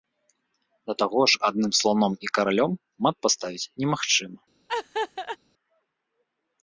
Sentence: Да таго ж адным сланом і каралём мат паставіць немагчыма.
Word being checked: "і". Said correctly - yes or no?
yes